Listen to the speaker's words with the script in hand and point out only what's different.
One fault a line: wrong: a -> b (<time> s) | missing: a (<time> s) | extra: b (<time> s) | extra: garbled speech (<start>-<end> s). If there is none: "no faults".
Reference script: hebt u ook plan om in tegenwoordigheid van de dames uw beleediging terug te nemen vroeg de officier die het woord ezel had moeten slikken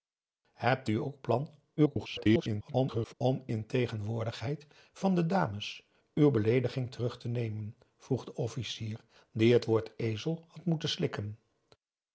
extra: garbled speech (1.8-3.1 s)